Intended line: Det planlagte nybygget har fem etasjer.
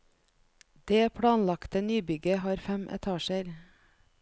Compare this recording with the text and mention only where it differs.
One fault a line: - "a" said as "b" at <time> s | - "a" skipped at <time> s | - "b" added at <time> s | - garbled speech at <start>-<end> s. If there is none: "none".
none